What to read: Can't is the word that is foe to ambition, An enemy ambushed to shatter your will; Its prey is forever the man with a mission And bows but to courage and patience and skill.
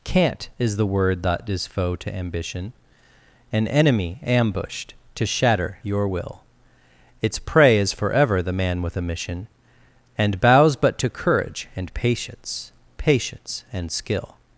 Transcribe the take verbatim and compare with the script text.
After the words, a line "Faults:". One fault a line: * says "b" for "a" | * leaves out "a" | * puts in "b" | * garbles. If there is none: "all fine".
Can't is the word that is foe to ambition, An enemy ambushed to shatter your will; Its prey is forever the man with a mission And bows but to courage and patience patience and skill.
Faults:
* puts in "patience"